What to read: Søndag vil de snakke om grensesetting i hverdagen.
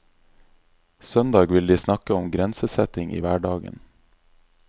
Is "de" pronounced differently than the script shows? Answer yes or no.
no